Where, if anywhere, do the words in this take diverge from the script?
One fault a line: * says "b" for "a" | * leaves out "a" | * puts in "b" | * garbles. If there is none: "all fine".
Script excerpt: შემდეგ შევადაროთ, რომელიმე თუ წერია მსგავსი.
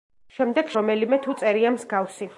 * leaves out "შევადაროთ"